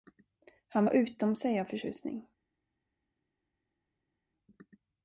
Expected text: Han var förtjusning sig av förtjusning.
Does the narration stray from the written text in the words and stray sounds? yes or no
yes